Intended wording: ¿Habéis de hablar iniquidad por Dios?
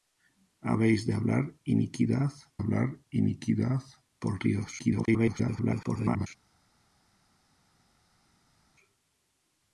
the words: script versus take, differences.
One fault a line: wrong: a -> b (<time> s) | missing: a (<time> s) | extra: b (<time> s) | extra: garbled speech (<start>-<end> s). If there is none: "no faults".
extra: hablar iniquidad (2.6 s)
extra: garbled speech (4.8-6.3 s)